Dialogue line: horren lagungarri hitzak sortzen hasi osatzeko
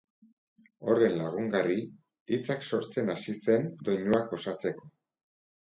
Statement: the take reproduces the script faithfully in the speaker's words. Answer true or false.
false